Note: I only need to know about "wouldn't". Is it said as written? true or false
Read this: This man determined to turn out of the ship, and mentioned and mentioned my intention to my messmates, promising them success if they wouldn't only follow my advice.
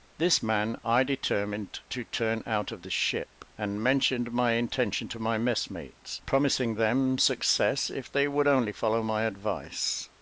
false